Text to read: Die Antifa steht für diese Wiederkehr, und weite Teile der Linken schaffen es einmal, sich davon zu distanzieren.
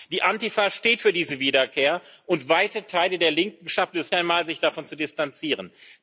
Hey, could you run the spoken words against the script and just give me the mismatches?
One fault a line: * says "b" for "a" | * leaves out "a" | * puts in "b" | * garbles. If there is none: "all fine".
all fine